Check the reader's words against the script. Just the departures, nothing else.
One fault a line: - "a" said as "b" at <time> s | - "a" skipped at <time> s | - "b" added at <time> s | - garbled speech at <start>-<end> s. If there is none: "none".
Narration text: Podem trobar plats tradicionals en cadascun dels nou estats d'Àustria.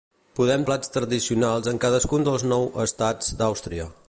- "trobar" skipped at 0.6 s